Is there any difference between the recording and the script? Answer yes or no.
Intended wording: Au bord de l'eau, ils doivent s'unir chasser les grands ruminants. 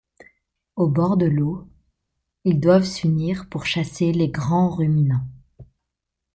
yes